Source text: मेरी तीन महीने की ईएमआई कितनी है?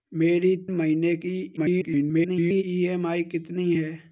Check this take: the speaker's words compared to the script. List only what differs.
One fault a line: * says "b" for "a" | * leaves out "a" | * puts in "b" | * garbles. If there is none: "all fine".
* leaves out "तीन"
* garbles